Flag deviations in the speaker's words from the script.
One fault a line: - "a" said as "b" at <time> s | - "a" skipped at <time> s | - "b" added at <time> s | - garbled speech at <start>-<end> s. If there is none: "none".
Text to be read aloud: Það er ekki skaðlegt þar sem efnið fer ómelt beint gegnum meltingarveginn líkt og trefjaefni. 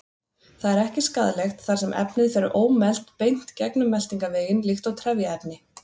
none